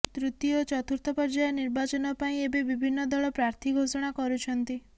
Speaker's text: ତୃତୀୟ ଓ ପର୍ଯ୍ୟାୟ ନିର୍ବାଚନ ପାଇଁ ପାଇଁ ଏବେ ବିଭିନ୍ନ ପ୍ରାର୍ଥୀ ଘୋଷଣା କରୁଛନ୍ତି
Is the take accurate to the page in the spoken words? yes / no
no